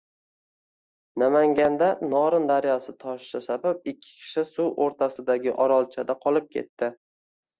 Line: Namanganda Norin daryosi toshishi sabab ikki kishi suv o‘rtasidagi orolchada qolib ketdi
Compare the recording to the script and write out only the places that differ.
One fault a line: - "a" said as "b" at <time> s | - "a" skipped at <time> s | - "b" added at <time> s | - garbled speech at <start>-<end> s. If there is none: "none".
none